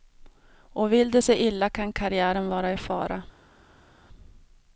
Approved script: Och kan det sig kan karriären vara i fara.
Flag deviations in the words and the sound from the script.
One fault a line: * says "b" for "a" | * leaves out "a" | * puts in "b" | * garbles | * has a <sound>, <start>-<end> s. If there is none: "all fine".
* says "vill" for "kan"
* puts in "illa"